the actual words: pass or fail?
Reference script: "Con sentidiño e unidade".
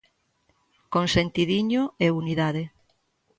pass